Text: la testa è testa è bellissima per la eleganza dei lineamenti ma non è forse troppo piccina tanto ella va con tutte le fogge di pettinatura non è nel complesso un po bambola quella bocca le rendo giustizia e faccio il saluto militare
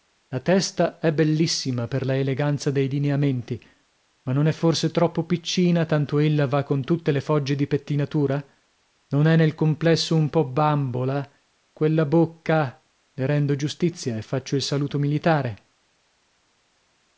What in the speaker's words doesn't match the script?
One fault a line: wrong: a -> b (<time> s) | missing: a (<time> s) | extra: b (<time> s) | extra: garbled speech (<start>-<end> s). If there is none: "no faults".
missing: testa è (1.1 s)